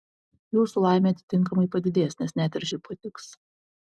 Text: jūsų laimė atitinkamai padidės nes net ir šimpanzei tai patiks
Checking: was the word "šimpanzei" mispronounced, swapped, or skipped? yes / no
yes